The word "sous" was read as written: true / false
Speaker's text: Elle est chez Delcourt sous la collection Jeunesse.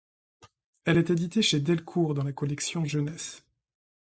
false